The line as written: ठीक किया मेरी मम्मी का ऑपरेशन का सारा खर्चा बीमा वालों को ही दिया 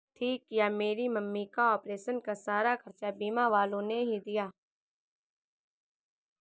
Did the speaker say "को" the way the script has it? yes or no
no